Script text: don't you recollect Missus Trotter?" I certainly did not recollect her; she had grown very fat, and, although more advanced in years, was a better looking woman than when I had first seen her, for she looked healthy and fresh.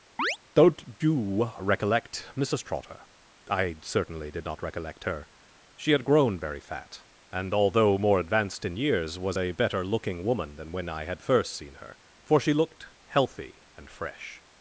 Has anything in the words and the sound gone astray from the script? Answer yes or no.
yes